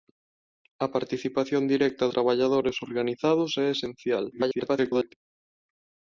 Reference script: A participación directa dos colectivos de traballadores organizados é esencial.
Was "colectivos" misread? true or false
true